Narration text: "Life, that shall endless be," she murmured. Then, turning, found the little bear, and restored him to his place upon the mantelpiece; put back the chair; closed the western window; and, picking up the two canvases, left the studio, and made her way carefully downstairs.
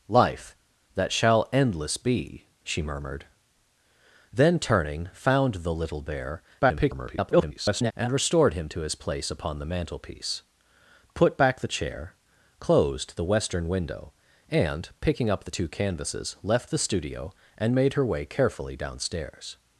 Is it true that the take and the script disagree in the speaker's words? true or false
true